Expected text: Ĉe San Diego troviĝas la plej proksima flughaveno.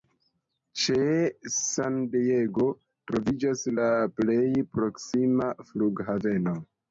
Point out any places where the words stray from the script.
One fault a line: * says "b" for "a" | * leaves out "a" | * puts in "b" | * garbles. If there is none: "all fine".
all fine